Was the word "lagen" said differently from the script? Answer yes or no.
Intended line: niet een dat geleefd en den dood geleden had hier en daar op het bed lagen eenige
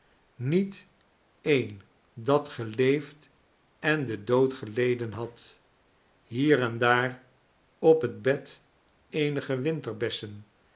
yes